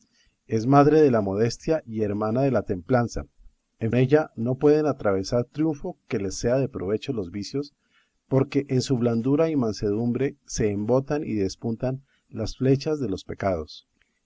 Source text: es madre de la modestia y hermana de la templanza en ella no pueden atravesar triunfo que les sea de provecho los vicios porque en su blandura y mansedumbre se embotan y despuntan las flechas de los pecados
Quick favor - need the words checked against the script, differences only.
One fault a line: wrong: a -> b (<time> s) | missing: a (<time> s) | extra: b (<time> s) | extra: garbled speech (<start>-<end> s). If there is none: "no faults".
no faults